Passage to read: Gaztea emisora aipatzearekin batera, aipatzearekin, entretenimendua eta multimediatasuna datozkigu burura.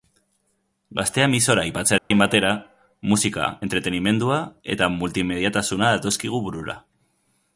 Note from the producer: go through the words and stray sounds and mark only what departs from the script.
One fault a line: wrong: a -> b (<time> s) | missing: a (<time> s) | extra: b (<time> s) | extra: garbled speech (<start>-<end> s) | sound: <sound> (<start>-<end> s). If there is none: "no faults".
sound: dropout (2.0-2.1 s)
wrong: aipatzearekin -> musika (3.1 s)